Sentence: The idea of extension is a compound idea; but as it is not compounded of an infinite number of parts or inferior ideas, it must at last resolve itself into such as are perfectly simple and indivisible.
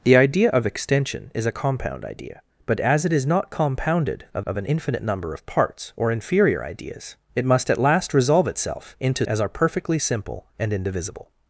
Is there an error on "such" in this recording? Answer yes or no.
yes